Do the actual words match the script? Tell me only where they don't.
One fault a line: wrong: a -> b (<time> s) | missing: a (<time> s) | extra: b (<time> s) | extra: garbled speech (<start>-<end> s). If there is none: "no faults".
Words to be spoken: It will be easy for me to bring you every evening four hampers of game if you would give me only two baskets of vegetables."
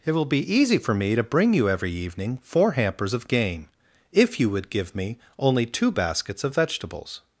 no faults